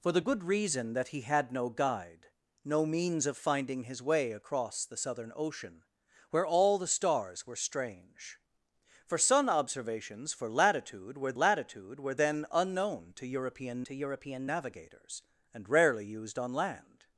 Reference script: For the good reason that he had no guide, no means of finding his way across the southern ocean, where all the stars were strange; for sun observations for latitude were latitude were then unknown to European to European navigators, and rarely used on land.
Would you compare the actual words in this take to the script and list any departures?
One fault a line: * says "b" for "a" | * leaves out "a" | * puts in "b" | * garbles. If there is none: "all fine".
all fine